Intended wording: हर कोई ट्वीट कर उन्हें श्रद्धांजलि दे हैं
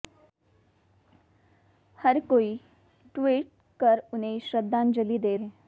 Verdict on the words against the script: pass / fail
pass